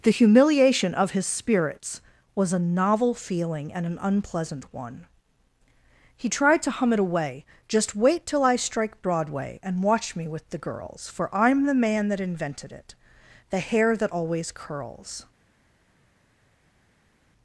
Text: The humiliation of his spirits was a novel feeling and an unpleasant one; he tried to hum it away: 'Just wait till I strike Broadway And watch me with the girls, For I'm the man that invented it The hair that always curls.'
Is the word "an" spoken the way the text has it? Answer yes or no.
yes